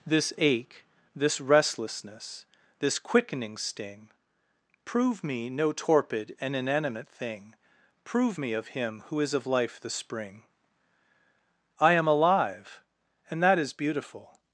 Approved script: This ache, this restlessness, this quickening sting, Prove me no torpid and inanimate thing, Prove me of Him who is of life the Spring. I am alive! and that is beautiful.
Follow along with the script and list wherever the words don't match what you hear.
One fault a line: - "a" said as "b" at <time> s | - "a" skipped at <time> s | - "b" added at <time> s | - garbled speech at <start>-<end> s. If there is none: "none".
none